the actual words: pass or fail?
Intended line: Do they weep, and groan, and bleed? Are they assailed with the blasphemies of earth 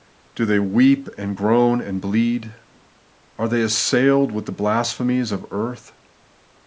pass